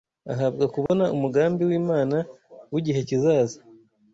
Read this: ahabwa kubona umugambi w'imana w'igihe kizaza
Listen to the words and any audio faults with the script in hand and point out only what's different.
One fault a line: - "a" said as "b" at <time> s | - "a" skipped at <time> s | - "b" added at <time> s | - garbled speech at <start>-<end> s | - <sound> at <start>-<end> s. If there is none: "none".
- dropout at 0.9-0.9 s